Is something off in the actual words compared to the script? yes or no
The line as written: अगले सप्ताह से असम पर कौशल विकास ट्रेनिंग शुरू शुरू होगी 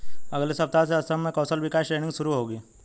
yes